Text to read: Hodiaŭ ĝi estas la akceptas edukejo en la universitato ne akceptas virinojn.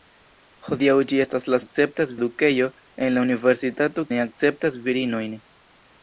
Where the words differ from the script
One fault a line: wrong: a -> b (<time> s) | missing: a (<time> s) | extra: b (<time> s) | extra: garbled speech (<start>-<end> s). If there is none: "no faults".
no faults